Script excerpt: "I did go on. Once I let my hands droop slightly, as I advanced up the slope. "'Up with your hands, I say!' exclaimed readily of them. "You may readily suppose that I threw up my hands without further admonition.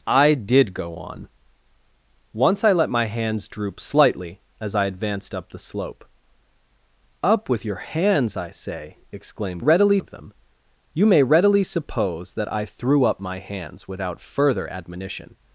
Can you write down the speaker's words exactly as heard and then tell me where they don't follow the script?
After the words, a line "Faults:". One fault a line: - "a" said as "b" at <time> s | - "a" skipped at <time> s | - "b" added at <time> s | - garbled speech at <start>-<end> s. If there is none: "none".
"I did go on. Once I let my hands droop slightly, as I advanced up the slope. "'Up with your hands, I say!' exclaimed readily of them. "You may readily suppose that I threw up my hands without further admonition.
Faults:
none